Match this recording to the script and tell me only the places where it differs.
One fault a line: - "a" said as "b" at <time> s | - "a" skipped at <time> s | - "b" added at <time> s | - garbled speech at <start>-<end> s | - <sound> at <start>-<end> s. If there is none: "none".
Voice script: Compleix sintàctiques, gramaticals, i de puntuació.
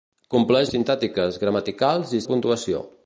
none